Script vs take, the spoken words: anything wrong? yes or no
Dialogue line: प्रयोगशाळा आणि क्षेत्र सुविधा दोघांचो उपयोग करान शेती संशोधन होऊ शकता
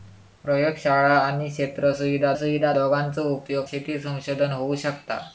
yes